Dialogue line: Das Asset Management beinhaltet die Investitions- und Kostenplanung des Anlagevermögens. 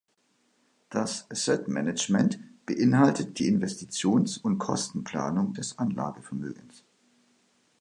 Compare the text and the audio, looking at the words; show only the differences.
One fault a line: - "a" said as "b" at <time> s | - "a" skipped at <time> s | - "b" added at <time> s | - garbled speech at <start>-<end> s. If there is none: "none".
none